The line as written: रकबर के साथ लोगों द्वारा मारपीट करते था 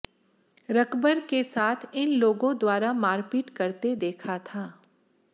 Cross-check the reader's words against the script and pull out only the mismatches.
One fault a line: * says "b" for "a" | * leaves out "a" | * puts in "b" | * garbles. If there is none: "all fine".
* puts in "इन"
* puts in "देखा"